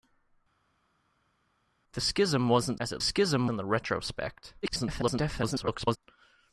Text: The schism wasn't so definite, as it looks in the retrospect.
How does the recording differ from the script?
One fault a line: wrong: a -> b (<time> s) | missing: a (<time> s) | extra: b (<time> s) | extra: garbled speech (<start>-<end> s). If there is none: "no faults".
missing: so definite (2.8 s)
wrong: looks -> schism (3.0 s)
extra: garbled speech (4.6-6.0 s)